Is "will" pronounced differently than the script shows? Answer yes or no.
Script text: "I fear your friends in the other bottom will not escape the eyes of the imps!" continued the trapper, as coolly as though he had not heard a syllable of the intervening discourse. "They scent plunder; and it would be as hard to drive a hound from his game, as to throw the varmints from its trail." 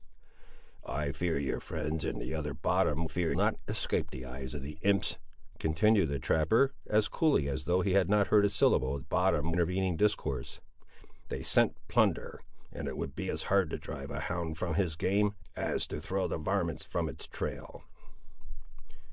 yes